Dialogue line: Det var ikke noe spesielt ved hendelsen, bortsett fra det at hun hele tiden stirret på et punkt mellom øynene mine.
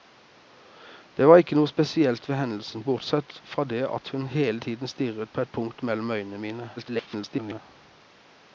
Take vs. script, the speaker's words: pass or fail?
fail